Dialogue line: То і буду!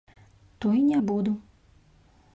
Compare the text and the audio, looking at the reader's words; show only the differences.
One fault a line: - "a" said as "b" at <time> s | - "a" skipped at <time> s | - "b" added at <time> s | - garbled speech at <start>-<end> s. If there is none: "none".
- "не" added at 0.8 s